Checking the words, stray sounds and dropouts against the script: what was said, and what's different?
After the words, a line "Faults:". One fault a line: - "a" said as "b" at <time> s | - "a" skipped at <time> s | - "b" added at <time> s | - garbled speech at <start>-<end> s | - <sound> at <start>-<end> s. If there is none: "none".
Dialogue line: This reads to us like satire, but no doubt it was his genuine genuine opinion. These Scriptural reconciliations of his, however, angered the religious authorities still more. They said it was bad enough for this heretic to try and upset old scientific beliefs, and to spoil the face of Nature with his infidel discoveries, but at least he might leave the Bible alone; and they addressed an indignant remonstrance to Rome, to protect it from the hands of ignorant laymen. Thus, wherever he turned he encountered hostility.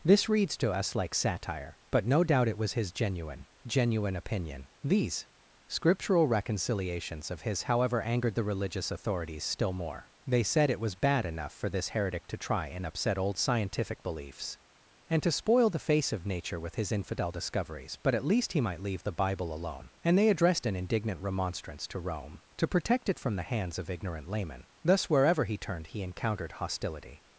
This reads to us like satire, but no doubt it was his genuine genuine opinion. These Scriptural reconciliations of his, however, angered the religious authorities still more. They said it was bad enough for this heretic to try and upset old scientific beliefs, and to spoil the face of Nature with his infidel discoveries, but at least he might leave the Bible alone; and they addressed an indignant remonstrance to Rome, to protect it from the hands of ignorant laymen. Thus, wherever he turned he encountered hostility.
Faults:
none